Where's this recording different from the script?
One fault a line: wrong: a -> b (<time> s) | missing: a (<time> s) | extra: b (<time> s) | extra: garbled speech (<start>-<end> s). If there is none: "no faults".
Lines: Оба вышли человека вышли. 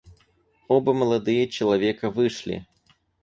wrong: вышли -> молодые (0.9 s)